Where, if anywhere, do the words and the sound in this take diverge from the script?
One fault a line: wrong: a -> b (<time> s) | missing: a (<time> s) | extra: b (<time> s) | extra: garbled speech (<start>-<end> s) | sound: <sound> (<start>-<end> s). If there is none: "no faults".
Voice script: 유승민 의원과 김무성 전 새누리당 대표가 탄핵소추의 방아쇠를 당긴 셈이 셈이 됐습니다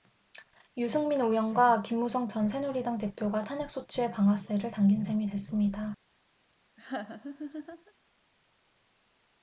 missing: 셈이 (5.3 s)
sound: laugh (6.8-7.9 s)